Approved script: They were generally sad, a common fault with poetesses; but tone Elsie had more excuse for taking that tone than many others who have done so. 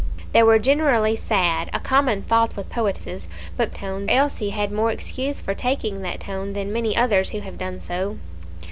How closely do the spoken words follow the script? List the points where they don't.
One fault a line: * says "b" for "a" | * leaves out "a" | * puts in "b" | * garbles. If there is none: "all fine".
all fine